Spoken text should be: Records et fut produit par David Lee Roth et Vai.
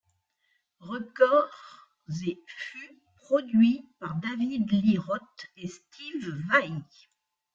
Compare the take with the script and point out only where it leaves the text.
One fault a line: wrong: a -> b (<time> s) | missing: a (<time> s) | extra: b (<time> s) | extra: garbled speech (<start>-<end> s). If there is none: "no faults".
extra: Steve (5.7 s)